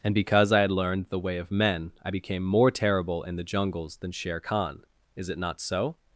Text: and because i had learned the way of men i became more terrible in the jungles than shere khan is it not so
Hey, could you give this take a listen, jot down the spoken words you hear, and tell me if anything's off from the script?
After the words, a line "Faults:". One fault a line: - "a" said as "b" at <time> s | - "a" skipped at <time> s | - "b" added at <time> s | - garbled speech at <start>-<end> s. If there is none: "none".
and because i had learned the way of men i became more terrible in the jungles than shere khan is it not so
Faults:
none